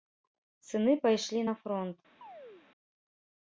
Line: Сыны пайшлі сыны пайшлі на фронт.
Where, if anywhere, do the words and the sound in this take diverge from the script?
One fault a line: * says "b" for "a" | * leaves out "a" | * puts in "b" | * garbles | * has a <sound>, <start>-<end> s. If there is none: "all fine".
* leaves out "сыны пайшлі"
* has a chirp, 2.2-2.7 s